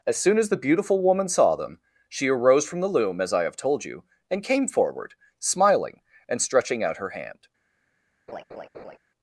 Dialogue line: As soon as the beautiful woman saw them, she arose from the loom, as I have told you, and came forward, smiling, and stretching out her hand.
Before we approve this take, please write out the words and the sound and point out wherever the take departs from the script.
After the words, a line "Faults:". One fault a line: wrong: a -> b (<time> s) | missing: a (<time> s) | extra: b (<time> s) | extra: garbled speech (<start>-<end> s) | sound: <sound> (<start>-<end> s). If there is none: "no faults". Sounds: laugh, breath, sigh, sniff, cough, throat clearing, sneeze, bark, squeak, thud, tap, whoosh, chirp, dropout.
As soon as the beautiful woman saw them, she arose from the loom, as I have told you, and came forward, smiling, and stretching out her hand.
Faults:
sound: laugh (8.3-9.0 s)